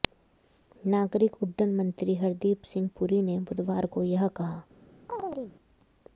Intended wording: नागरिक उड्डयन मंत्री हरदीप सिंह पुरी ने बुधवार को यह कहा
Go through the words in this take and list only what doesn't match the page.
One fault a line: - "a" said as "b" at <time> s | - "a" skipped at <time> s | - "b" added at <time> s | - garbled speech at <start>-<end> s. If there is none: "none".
none